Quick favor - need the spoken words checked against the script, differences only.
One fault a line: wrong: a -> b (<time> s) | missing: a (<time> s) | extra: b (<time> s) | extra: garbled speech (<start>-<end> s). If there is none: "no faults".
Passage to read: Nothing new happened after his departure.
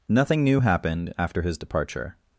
no faults